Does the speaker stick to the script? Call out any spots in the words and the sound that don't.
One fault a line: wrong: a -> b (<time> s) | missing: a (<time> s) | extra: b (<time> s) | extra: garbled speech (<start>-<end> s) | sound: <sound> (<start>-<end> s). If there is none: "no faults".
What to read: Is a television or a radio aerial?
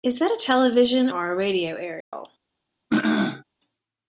extra: that (0.2 s)
sound: dropout (2.0-2.1 s)
sound: throat clearing (2.9-3.4 s)